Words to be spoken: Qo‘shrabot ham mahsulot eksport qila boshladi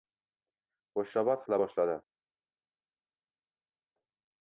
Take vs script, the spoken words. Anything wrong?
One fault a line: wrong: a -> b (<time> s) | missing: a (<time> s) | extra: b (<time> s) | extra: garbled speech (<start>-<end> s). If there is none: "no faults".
missing: ham mahsulot eksport (1.4 s)